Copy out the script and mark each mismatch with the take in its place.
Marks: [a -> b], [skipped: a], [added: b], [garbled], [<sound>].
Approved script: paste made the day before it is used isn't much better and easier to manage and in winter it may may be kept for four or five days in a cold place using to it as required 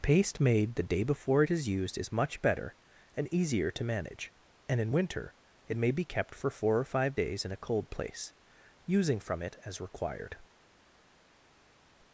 paste made the day before it is used [isn't -> is] much better and easier to manage and in winter it may [skipped: may] be kept for four or five days in a cold place using [to -> from] it as required